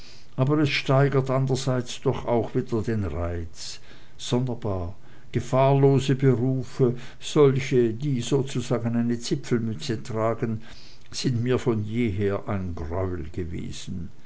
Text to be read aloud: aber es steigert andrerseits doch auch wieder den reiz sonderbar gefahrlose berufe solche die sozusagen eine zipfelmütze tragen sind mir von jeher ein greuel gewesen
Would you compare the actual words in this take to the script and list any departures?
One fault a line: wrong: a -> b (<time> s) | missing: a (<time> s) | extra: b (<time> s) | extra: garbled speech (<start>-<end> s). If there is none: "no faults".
no faults